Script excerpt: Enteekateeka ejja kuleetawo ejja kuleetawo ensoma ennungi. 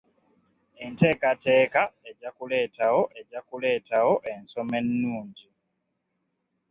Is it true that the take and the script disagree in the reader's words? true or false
false